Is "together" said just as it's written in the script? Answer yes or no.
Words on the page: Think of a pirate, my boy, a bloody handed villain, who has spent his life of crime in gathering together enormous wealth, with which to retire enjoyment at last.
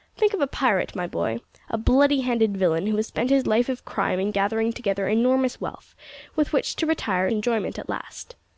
yes